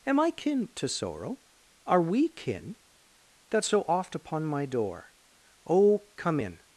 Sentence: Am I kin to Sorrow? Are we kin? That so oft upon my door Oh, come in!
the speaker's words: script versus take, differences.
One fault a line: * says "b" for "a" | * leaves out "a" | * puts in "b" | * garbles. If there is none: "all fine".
all fine